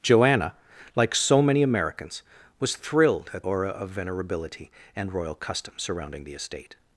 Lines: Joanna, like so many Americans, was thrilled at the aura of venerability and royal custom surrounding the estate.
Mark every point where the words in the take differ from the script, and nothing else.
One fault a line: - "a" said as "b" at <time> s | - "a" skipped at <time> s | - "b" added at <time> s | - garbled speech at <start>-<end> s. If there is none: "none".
- "the" skipped at 3.5 s